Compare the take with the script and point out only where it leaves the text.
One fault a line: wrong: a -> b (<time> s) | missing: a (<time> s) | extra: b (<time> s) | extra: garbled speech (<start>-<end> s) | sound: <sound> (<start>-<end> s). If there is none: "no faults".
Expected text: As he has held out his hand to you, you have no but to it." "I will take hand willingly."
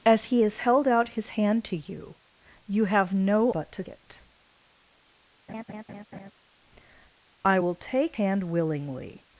sound: laugh (5.5-6.3 s)